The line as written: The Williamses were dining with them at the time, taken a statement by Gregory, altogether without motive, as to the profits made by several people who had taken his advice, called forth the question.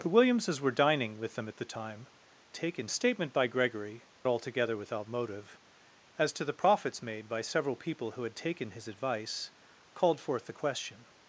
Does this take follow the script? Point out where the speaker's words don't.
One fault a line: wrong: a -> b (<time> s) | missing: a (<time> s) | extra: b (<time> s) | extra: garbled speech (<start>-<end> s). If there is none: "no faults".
no faults